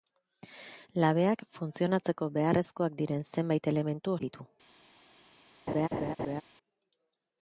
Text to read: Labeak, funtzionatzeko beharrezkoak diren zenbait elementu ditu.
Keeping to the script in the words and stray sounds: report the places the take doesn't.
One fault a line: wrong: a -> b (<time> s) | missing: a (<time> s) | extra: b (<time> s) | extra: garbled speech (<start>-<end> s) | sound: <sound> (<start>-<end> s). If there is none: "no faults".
sound: laugh (5.7-6.4 s)